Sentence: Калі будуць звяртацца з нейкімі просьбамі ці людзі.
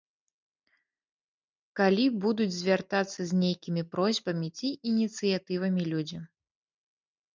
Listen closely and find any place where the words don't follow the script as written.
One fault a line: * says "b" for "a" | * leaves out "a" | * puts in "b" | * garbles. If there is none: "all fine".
* puts in "ініцыятывамі"